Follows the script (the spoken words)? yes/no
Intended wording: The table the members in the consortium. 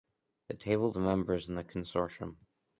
yes